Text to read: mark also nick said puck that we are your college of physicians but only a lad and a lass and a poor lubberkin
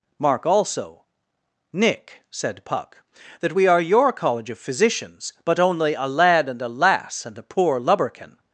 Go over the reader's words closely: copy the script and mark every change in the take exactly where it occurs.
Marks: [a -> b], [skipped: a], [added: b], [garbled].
mark also nick said puck that we are your college of physicians but only a lad and a lass and a poor lubberkin